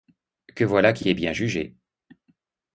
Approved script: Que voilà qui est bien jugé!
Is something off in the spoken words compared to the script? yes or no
yes